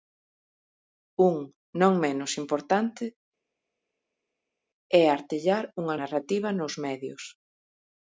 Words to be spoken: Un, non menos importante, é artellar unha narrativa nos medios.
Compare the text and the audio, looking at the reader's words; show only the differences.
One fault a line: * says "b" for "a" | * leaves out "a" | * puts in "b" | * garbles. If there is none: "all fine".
all fine